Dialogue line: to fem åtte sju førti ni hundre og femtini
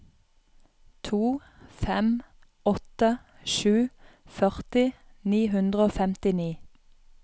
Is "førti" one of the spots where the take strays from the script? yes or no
no